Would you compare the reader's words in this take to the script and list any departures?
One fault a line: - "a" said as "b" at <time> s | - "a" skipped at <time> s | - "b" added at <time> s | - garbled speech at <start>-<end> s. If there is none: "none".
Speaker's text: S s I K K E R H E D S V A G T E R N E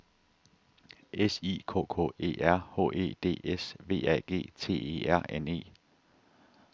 - "s" skipped at 1.4 s